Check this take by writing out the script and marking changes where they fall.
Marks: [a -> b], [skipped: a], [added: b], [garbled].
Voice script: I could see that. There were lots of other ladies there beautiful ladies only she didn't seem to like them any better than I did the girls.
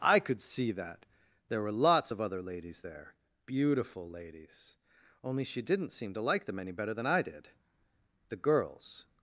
I could see that. There were lots of other ladies there beautiful ladies only she didn't seem to like them any better than I did the girls.